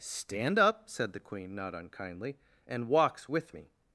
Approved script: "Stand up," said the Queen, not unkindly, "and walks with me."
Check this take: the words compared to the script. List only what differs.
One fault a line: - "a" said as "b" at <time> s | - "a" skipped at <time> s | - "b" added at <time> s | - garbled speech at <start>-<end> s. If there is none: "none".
none